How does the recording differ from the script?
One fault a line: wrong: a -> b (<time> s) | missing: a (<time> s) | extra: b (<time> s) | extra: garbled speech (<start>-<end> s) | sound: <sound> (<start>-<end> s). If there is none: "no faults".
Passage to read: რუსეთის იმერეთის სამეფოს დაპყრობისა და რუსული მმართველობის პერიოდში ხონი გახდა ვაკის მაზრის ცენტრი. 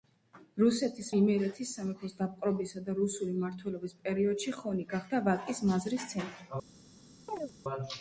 sound: chirp (7.3-7.5 s)